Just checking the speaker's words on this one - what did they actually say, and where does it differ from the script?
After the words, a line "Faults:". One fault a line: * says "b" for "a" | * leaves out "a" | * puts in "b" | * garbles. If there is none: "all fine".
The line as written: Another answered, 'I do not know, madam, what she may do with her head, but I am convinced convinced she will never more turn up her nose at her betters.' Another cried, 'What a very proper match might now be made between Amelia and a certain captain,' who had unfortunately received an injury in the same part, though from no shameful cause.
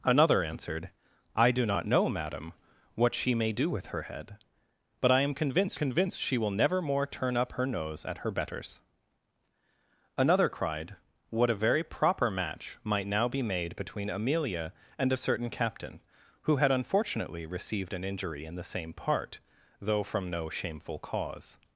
Another answered, 'I do not know, madam, what she may do with her head, but I am convinced convinced she will never more turn up her nose at her betters.' Another cried, 'What a very proper match might now be made between Amelia and a certain captain,' who had unfortunately received an injury in the same part, though from no shameful cause.
Faults:
all fine